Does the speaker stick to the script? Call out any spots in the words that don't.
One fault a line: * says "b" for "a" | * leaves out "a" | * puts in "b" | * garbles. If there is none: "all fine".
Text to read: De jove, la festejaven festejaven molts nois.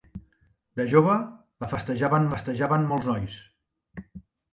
all fine